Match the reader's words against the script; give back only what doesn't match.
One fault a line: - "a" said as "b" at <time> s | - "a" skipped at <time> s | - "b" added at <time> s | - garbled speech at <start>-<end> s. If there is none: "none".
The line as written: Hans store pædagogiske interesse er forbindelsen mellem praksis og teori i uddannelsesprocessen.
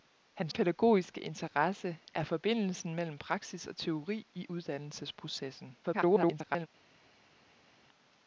- "store" skipped at 0.5 s
- garbled speech at 5.8-6.7 s